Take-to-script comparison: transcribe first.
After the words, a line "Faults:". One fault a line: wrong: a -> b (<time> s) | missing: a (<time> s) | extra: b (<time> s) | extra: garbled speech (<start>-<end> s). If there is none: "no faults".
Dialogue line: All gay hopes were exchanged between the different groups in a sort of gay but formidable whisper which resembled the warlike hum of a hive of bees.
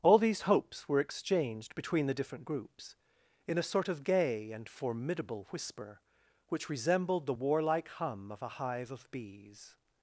All these hopes were exchanged between the different groups in a sort of gay and formidable whisper which resembled the warlike hum of a hive of bees.
Faults:
wrong: gay -> these (0.2 s)
wrong: but -> and (4.5 s)